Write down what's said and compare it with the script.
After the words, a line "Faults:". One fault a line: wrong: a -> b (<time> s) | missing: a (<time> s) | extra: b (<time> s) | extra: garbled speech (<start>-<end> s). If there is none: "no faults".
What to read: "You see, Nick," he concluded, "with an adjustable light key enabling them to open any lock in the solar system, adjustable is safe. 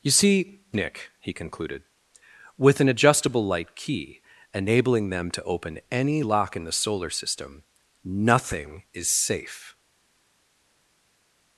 "You see, Nick," he concluded, "with an adjustable light key enabling them to open any lock in the solar system, nothing is safe.
Faults:
wrong: adjustable -> nothing (8.0 s)